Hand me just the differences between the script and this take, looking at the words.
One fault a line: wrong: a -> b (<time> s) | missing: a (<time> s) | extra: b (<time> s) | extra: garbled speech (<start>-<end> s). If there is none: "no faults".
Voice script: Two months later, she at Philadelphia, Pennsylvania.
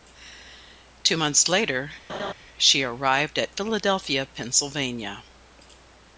extra: arrived (2.8 s)